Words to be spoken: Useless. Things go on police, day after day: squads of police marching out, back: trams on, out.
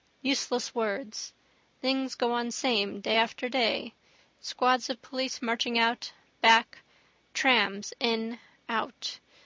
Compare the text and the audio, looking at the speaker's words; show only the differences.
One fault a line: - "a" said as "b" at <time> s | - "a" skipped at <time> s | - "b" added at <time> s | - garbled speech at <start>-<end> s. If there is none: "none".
- "words" added at 0.7 s
- "police" said as "same" at 2.5 s
- "on" said as "in" at 8.0 s